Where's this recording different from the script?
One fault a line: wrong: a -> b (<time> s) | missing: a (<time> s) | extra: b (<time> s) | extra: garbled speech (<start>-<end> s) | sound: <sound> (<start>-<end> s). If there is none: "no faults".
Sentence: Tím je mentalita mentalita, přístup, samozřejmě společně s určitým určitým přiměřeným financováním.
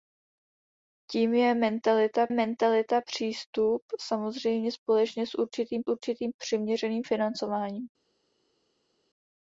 no faults